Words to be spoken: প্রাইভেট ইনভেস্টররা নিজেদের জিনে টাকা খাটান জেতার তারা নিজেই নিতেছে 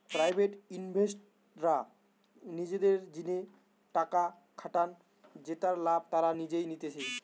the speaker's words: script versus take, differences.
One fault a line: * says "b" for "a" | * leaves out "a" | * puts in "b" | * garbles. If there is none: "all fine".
* puts in "লাভ"